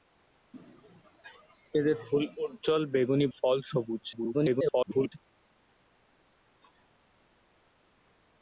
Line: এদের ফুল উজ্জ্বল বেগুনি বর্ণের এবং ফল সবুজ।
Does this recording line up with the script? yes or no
no